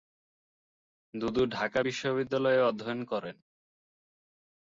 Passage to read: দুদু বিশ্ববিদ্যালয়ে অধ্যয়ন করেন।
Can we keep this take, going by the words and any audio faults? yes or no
no